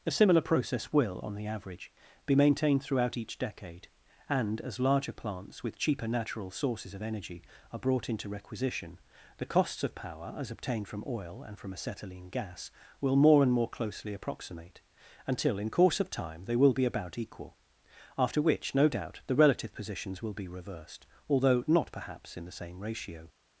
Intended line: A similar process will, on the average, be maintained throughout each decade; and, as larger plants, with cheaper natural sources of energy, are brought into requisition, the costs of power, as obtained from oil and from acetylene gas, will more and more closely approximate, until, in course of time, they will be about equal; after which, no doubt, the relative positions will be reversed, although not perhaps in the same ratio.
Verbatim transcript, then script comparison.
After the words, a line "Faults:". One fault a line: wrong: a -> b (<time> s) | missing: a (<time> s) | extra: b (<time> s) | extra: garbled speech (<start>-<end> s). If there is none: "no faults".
A similar process will, on the average, be maintained throughout each decade; and, as larger plants, with cheaper natural sources of energy, are brought into requisition, the costs of power, as obtained from oil and from acetylene gas, will more and more closely approximate, until, in course of time, they will be about equal; after which, no doubt, the relative positions will be reversed, although not perhaps in the same ratio.
Faults:
no faults